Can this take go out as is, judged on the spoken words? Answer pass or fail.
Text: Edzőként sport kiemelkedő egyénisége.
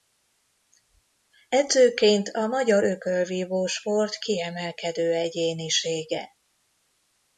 fail